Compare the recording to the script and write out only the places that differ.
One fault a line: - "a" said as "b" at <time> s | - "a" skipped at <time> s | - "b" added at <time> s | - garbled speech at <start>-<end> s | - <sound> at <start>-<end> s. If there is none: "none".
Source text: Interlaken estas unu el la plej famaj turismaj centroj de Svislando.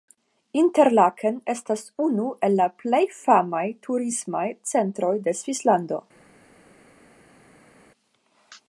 none